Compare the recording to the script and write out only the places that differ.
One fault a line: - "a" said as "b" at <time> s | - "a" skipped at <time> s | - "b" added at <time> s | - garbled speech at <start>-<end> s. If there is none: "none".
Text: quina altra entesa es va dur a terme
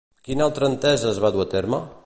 none